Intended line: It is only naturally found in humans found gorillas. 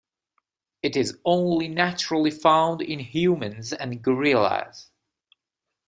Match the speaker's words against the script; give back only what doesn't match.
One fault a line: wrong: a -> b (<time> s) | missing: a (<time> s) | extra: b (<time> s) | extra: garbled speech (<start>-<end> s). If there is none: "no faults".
wrong: found -> and (3.7 s)